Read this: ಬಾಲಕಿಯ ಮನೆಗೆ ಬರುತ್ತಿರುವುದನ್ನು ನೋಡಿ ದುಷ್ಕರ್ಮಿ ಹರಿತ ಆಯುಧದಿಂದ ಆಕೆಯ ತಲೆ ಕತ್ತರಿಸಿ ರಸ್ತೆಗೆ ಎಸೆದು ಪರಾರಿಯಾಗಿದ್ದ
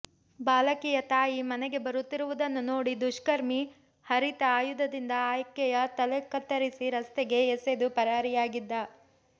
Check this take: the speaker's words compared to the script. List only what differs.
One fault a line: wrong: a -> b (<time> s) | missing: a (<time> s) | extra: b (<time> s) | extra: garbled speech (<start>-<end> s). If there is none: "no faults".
extra: ತಾಯಿ (1.1 s)